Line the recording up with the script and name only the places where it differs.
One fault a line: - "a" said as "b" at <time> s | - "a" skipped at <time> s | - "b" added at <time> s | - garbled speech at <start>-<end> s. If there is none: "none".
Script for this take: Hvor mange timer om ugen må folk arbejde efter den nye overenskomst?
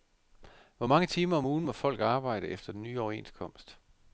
none